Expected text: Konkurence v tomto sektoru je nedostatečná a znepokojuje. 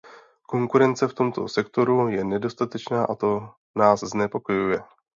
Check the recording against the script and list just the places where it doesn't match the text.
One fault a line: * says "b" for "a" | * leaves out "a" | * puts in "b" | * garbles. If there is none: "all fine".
* puts in "to nás"